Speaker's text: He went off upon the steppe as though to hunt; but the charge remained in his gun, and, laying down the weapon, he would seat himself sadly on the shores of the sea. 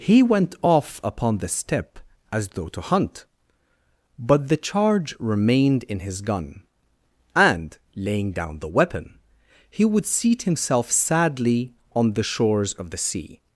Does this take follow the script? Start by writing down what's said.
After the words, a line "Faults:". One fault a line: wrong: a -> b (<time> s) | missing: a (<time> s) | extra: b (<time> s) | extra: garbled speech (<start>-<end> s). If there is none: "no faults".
He went off upon the steppe as though to hunt; but the charge remained in his gun, and, laying down the weapon, he would seat himself sadly on the shores of the sea.
Faults:
no faults